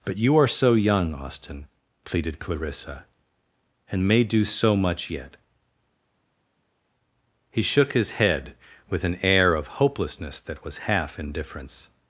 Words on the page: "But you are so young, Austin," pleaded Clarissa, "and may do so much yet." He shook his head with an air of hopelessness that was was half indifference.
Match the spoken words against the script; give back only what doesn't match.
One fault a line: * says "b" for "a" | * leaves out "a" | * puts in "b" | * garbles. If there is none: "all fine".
* leaves out "was"